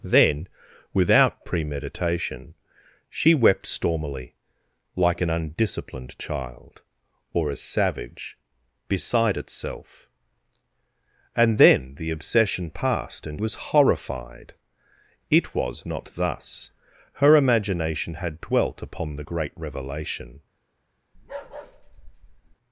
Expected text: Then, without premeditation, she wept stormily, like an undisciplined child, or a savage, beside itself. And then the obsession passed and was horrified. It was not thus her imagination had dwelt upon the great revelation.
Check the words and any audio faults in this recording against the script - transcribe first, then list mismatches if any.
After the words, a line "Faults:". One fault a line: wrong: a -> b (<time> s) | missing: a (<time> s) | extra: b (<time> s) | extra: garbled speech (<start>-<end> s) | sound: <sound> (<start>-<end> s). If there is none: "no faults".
Then, without premeditation, she wept stormily, like an undisciplined child, or a savage, beside itself. And then the obsession passed and was horrified. It was not thus her imagination had dwelt upon the great revelation.
Faults:
sound: bark (21.1-22.6 s)